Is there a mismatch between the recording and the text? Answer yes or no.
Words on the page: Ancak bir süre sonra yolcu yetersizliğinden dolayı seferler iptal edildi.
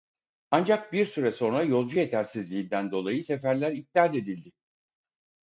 no